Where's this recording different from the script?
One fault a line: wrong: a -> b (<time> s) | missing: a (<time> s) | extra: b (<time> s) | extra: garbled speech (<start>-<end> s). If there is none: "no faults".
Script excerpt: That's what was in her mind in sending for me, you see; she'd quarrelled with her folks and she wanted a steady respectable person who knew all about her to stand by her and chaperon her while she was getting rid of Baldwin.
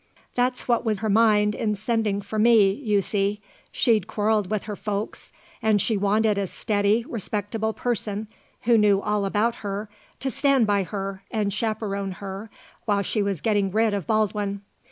missing: in (1.0 s)